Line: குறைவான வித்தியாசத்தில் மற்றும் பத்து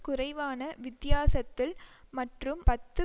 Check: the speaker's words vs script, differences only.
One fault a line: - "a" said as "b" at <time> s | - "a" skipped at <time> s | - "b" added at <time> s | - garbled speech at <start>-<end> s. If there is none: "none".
none